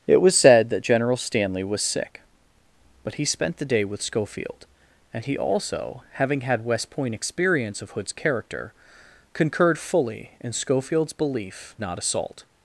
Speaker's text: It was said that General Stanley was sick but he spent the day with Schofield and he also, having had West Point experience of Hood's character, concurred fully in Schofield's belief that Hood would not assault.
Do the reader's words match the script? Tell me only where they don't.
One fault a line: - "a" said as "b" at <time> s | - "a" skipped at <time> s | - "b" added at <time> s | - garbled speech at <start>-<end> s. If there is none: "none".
- "that Hood would" skipped at 11.8 s